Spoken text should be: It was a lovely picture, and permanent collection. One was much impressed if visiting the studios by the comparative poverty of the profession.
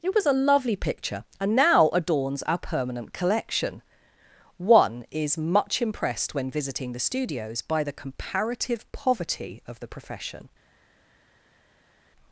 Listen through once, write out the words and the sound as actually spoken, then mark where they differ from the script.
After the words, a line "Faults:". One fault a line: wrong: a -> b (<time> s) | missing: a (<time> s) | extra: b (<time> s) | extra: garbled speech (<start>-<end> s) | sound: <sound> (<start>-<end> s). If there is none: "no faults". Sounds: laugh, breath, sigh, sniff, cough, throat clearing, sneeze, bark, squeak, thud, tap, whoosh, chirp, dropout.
It was a lovely picture, and now adorns our permanent collection. One is much impressed when visiting the studios by the comparative poverty of the profession.
Faults:
extra: now adorns our (1.6 s)
wrong: was -> is (5.1 s)
wrong: if -> when (6.3 s)